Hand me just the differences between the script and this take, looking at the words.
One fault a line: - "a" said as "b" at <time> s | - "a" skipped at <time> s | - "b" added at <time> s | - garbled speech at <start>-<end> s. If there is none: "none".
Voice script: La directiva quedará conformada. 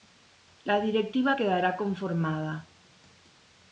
none